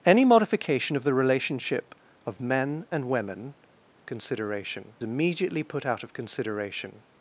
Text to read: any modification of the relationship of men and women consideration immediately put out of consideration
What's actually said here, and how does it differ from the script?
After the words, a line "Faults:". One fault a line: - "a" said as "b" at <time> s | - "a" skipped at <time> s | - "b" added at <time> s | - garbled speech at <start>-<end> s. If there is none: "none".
any modification of the relationship of men and women consideration immediately put out of consideration
Faults:
none